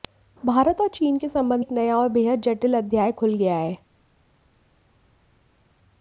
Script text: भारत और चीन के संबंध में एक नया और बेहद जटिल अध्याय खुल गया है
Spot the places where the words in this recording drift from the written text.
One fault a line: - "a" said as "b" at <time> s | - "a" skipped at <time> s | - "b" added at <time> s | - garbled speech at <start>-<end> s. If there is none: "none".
- "में" skipped at 1.6 s